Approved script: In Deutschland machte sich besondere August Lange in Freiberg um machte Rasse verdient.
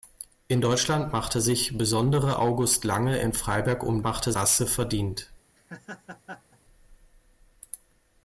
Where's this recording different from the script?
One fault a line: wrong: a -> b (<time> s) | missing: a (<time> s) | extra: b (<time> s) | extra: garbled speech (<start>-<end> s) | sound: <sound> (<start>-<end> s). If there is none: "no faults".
sound: laugh (5.6-6.6 s)